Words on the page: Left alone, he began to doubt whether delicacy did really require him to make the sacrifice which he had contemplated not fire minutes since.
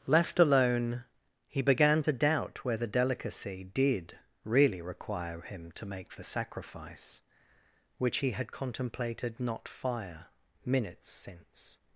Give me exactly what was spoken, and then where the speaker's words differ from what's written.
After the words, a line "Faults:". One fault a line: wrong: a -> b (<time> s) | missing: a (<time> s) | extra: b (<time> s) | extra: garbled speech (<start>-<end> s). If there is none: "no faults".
Left alone, he began to doubt whether delicacy did really require him to make the sacrifice which he had contemplated not fire minutes since.
Faults:
no faults